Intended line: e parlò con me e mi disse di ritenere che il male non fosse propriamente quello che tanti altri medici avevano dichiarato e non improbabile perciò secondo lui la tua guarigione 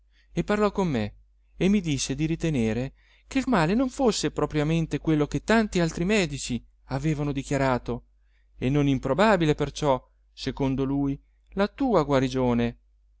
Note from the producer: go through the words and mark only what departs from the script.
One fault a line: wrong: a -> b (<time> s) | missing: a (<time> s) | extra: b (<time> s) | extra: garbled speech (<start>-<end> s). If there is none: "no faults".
no faults